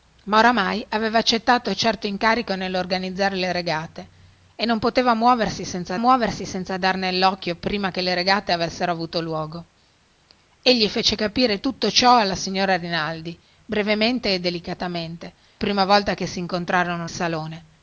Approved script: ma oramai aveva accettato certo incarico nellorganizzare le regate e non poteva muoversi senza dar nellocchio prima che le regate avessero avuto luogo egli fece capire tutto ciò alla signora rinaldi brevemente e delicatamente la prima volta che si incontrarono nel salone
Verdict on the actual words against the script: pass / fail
fail